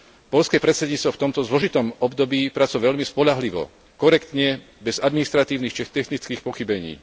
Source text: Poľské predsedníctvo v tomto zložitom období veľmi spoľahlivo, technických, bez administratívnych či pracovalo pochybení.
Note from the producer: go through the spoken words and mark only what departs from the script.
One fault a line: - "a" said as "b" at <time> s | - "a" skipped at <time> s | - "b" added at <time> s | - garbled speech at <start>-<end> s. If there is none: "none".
- "pracovalo" added at 2.5 s
- "technických" said as "korektne" at 4.0 s
- "pracovalo" said as "technických" at 5.8 s